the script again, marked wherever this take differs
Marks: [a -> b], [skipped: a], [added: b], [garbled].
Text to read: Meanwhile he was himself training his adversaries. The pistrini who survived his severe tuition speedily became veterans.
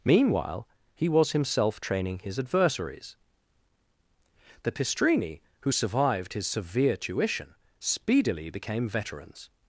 Meanwhile he was himself training his adversaries. The pistrini who survived his severe tuition speedily became veterans.